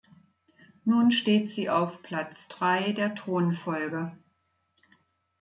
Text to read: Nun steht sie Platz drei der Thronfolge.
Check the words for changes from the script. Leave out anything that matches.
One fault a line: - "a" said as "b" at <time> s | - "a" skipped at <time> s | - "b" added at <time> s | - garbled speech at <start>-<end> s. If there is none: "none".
- "auf" added at 1.7 s